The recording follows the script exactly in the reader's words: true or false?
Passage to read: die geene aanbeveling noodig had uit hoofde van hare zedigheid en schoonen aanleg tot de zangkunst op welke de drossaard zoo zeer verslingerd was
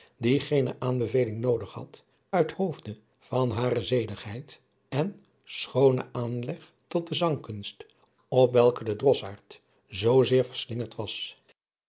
true